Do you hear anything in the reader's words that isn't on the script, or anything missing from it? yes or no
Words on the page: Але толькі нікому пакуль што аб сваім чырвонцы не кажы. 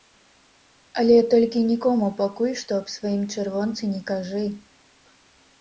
no